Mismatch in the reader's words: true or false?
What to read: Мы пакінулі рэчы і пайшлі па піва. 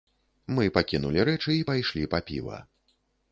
false